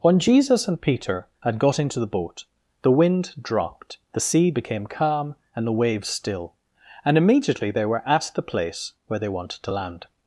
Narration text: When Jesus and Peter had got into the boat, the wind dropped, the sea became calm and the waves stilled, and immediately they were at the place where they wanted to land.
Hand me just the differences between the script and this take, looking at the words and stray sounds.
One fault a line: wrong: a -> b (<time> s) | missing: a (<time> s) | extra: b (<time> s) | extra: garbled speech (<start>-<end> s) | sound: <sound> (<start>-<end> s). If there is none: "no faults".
wrong: stilled -> still (6.1 s)